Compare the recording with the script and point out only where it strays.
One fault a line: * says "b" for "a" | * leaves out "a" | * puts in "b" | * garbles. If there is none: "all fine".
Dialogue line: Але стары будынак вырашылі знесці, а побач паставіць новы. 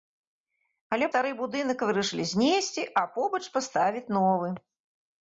all fine